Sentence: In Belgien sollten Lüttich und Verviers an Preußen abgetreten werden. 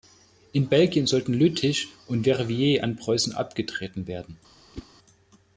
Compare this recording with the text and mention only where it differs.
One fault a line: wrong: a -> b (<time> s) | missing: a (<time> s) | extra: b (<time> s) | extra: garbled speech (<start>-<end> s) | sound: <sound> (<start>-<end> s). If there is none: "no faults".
sound: whoosh (4.7-4.9 s)